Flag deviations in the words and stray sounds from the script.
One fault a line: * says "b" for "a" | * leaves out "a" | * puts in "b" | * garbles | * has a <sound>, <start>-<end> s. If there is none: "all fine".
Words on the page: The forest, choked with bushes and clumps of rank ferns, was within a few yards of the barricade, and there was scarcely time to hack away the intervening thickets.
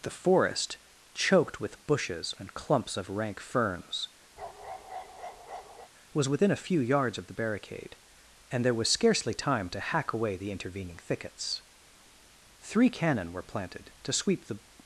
* has a bark, 4.4-5.9 s
* puts in "Three cannon were planted to sweep the"